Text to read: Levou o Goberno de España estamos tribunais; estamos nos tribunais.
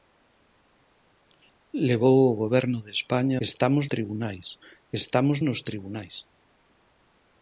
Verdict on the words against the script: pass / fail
pass